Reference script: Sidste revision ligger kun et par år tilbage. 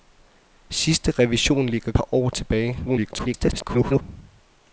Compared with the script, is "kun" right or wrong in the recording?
wrong